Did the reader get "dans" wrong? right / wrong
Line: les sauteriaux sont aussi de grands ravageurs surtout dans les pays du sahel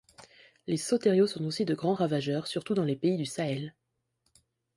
right